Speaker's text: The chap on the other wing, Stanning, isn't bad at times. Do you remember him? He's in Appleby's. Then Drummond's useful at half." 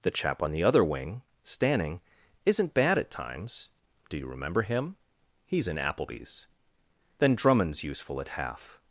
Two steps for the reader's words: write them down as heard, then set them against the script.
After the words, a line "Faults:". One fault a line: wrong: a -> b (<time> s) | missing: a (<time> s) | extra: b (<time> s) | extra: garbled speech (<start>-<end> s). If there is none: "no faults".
The chap on the other wing, Stanning, isn't bad at times. Do you remember him? He's in Appleby's. Then Drummond's useful at half."
Faults:
no faults